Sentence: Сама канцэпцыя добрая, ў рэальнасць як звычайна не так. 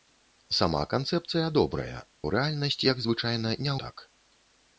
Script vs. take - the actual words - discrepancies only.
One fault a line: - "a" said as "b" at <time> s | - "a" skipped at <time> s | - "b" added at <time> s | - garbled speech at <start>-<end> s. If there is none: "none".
none